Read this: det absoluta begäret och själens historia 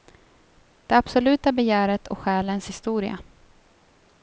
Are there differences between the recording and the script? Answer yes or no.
no